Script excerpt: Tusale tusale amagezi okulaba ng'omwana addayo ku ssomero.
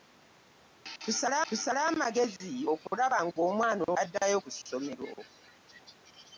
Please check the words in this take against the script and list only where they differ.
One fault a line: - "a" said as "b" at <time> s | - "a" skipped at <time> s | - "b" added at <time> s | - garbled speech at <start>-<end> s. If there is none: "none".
none